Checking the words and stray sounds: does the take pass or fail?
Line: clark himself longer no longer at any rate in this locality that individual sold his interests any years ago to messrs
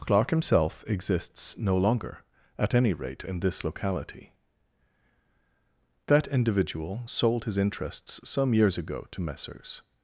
fail